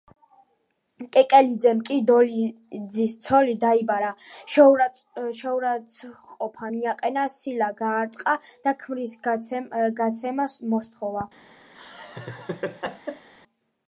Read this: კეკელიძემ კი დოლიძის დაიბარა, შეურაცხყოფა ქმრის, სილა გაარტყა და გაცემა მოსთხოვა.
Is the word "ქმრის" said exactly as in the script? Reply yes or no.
no